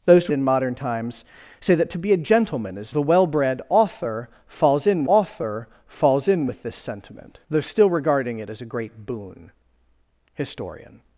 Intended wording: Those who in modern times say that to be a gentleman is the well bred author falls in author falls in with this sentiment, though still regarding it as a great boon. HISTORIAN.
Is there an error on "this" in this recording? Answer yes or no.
no